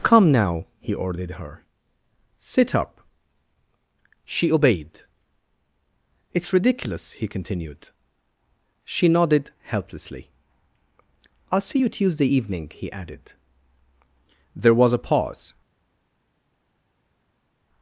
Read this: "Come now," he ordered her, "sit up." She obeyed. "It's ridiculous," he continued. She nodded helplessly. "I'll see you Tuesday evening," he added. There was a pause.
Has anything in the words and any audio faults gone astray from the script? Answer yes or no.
no